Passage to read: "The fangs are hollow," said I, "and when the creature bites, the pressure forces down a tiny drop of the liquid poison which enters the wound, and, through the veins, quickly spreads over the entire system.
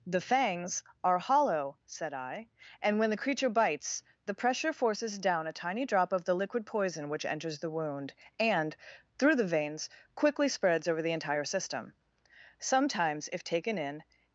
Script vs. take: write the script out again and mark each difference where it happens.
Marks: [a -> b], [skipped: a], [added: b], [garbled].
"The fangs are hollow," said I, "and when the creature bites, the pressure forces down a tiny drop of the liquid poison which enters the wound, and, through the veins, quickly spreads over the entire system. [added: Sometimes if taken in]